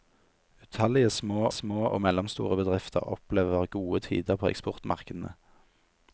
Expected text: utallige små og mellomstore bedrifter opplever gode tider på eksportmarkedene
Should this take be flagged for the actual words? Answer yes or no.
yes